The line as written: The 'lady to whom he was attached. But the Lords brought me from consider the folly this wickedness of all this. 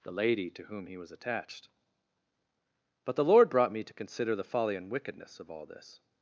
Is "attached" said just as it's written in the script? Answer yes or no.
yes